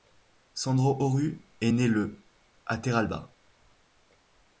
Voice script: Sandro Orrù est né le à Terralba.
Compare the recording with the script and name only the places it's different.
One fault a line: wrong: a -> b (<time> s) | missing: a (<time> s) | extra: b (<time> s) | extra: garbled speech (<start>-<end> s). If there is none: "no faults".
no faults